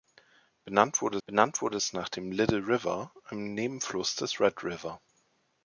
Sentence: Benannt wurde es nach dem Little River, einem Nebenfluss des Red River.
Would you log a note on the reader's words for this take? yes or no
yes